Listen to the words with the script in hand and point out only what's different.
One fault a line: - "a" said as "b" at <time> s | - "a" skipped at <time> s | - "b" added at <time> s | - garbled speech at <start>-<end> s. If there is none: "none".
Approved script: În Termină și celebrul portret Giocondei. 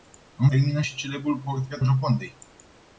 none